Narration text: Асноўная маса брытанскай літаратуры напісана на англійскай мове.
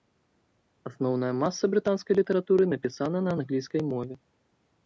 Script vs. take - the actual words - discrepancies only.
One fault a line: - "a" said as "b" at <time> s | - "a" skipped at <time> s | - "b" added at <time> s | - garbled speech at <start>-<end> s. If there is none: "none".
none